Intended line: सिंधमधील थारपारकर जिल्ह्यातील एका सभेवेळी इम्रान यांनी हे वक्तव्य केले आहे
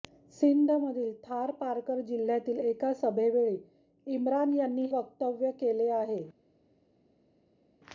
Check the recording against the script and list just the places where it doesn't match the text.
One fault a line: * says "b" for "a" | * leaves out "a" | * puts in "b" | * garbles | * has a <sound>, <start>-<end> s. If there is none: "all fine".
* leaves out "हे"